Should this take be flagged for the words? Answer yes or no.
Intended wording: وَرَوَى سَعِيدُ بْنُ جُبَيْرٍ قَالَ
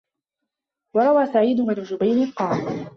no